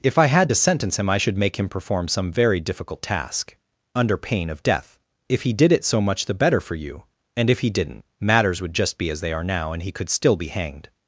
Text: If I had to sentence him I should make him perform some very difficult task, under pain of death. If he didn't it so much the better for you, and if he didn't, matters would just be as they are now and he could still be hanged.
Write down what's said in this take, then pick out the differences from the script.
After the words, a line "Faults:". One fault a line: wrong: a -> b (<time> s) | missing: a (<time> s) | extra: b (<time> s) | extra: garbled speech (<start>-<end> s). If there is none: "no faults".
If I had to sentence him I should make him perform some very difficult task, under pain of death. If he did it so much the better for you, and if he didn't, matters would just be as they are now and he could still be hanged.
Faults:
wrong: didn't -> did (5.5 s)